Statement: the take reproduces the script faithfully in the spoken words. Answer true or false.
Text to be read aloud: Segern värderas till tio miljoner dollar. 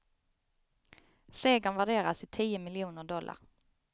true